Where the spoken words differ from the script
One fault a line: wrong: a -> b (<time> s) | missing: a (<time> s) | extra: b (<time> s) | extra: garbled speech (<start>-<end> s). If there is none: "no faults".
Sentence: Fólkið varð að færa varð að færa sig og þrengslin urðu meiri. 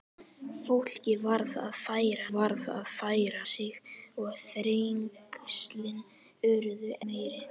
no faults